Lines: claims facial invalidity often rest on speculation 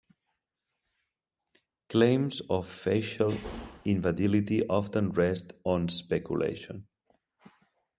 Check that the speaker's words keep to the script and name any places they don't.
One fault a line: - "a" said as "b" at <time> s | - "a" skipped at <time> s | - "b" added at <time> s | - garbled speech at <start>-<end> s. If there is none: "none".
- "of" added at 2.5 s